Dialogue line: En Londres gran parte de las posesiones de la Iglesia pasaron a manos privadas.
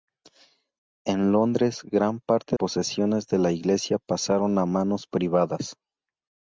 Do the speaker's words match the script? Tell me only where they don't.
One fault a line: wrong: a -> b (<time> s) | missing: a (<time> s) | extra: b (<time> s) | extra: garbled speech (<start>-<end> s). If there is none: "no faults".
missing: de las (2.6 s)